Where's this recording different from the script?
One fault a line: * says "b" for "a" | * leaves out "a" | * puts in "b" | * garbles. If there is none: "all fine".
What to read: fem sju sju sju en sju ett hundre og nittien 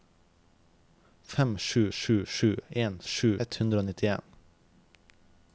all fine